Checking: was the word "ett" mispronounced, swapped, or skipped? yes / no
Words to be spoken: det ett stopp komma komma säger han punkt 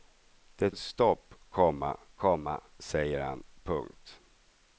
no